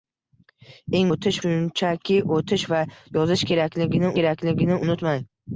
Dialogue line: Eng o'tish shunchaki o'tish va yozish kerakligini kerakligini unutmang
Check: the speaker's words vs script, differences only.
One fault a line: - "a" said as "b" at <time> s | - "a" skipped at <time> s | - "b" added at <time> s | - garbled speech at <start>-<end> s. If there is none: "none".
none